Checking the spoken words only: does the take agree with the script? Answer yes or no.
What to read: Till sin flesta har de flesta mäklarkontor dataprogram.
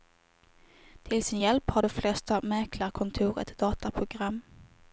no